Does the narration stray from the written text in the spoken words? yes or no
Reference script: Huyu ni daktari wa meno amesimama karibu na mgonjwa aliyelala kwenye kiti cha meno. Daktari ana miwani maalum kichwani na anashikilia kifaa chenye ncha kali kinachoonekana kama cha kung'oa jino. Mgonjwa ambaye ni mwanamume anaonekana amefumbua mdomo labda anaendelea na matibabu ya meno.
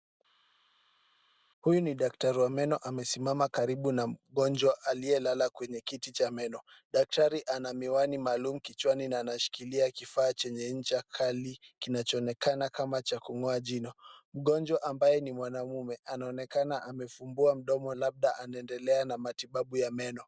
no